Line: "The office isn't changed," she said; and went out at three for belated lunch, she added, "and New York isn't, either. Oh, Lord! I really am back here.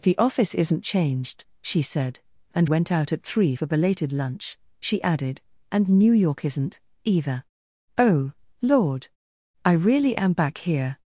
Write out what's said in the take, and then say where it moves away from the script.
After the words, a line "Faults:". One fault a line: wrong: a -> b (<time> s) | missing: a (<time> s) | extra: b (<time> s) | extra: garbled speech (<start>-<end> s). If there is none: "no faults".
"The office isn't changed," she said; and went out at three for belated lunch, she added, "and New York isn't, either. Oh, Lord! I really am back here.
Faults:
no faults